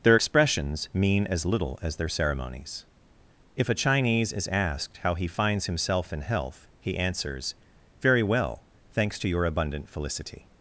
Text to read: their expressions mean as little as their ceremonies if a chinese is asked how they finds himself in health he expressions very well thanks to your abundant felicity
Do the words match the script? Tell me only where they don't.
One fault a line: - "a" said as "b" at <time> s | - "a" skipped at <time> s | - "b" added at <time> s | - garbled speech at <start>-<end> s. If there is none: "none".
- "they" said as "he" at 5.1 s
- "expressions" said as "answers" at 7.0 s